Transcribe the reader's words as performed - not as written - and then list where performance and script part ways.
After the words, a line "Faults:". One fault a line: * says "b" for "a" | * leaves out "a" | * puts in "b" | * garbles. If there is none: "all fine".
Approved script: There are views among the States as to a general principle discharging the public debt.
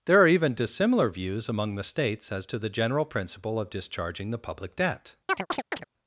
There are even dissimilar views among the States as to the general principle of discharging the public debt.
Faults:
* puts in "even dissimilar"
* says "the" for "a"
* puts in "of"